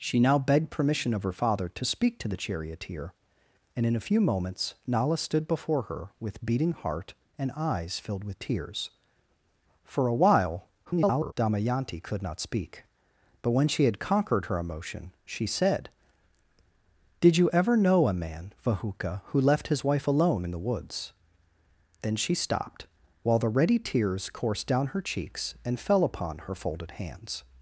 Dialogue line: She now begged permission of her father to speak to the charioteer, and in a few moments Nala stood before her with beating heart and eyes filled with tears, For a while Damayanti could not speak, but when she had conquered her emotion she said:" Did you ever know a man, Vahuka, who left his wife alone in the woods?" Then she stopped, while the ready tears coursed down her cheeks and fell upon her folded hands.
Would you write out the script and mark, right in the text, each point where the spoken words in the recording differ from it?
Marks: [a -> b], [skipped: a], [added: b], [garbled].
She now begged permission of her father to speak to the charioteer, and in a few moments Nala stood before her with beating heart and eyes filled with tears, For a while [garbled] Damayanti could not speak, but when she had conquered her emotion she said:" Did you ever know a man, Vahuka, who left his wife alone in the woods?" Then she stopped, while the ready tears coursed down her cheeks and fell upon her folded hands.